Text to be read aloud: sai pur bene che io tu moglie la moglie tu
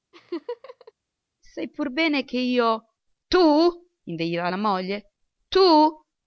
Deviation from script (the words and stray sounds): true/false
true